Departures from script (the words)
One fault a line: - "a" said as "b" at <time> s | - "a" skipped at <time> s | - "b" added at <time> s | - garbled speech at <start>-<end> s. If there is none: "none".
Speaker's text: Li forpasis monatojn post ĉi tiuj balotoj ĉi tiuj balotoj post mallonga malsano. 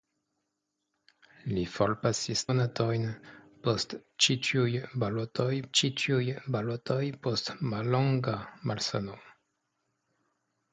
none